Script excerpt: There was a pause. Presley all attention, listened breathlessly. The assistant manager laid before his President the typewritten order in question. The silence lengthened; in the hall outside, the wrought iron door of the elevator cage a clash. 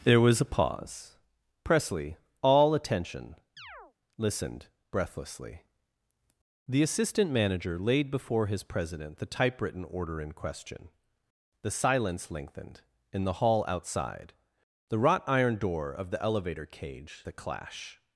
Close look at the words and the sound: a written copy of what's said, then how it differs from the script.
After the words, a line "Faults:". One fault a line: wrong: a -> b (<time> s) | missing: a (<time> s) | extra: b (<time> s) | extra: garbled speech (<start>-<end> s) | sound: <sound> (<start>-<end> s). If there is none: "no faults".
There was a pause. Presley all attention, listened breathlessly. The assistant manager laid before his President the typewritten order in question. The silence lengthened; in the hall outside, the wrought iron door of the elevator cage a clash.
Faults:
sound: chirp (3.6-3.9 s)